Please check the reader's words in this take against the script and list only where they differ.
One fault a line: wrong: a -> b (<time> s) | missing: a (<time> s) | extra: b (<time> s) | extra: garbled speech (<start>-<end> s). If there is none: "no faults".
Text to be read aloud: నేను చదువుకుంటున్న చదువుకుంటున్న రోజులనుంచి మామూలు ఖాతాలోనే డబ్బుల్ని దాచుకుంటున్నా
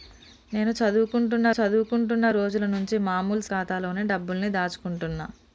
no faults